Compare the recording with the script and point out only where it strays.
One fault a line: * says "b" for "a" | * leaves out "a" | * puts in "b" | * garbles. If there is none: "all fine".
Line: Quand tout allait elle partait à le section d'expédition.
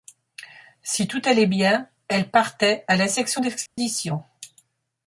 * says "Si" for "Quand"
* puts in "bien"
* says "la" for "le"